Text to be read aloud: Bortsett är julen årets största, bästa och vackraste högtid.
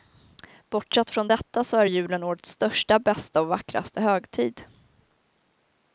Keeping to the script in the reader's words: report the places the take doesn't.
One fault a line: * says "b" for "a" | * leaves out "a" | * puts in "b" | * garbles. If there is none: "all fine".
* puts in "från detta så"